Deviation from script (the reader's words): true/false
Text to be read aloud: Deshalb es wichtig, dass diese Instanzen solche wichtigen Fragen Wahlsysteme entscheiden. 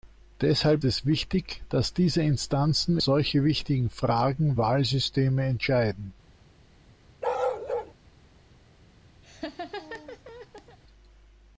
false